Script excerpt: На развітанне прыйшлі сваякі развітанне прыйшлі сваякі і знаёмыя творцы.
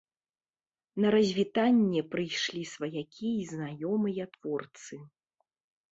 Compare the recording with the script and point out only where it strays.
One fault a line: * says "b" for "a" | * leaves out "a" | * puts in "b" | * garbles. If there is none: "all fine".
* leaves out "развітанне прыйшлі сваякі"